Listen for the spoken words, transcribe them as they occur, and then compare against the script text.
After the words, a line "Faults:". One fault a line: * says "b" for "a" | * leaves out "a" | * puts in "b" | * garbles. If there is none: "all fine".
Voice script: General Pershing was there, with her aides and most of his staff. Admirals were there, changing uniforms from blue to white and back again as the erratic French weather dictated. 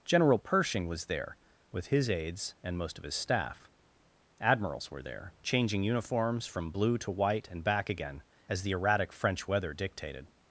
General Pershing was there, with his aides and most of his staff. Admirals were there, changing uniforms from blue to white and back again as the erratic French weather dictated.
Faults:
* says "his" for "her"